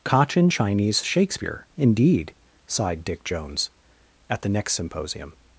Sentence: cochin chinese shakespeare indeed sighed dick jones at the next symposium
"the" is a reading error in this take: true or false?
false